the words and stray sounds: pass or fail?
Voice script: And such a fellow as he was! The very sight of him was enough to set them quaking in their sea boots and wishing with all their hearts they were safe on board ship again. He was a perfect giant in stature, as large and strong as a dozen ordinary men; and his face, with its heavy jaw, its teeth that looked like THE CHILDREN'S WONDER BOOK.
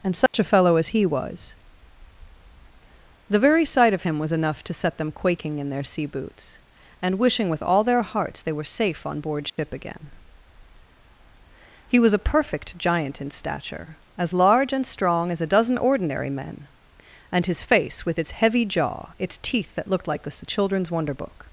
fail